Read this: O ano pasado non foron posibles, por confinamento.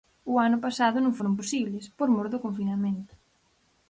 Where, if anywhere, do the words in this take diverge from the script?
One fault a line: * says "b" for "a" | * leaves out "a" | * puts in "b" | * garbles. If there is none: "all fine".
* puts in "mor do"